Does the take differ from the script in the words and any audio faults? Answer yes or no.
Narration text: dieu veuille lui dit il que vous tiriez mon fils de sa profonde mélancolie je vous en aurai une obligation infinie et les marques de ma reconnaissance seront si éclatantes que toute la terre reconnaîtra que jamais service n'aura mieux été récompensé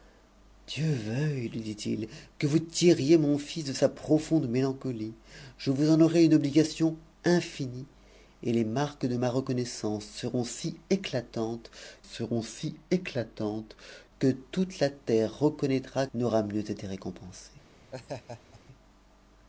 yes